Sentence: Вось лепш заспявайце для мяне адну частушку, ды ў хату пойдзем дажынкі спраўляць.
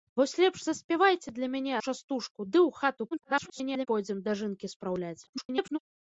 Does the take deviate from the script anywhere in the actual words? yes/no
yes